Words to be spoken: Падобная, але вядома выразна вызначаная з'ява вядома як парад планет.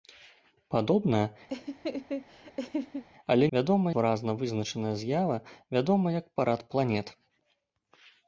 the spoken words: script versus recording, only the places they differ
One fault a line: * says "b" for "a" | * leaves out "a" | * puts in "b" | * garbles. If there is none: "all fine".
all fine